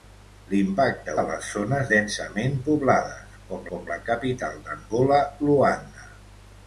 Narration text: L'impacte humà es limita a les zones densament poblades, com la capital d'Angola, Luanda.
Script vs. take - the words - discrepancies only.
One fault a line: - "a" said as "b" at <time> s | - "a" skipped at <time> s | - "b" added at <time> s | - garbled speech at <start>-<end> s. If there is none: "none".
- "humà es limita" skipped at 1.1 s
- "com" added at 3.7 s